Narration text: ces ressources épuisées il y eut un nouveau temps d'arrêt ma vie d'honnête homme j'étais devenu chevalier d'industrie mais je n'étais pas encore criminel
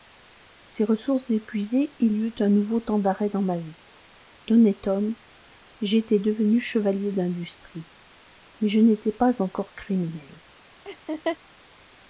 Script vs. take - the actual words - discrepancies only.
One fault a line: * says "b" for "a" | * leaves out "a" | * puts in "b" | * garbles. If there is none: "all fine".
* puts in "dans"